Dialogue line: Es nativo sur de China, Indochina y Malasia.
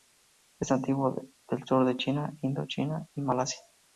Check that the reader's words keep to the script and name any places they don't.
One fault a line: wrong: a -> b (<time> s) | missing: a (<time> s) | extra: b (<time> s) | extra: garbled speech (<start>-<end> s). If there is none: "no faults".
extra: del (1.5 s)